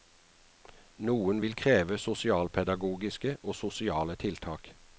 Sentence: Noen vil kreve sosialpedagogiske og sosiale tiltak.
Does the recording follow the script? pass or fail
pass